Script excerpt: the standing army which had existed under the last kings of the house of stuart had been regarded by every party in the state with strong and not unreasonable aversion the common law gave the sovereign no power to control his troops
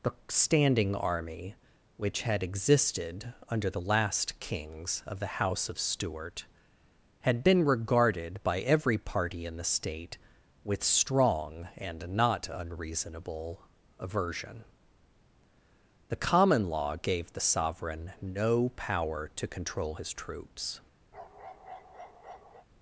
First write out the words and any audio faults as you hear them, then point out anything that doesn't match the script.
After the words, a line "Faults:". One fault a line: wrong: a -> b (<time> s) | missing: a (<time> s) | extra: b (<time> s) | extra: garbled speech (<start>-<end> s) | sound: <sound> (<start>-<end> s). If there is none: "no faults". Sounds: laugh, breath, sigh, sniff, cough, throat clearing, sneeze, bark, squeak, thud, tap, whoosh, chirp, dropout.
the standing army which had existed under the last kings of the house of stuart had been regarded by every party in the state with strong and not unreasonable aversion the common law gave the sovereign no power to control his troops
Faults:
sound: bark (21.1-22.7 s)